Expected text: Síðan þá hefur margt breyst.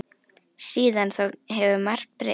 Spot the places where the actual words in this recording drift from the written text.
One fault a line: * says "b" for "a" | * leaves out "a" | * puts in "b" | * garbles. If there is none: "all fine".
all fine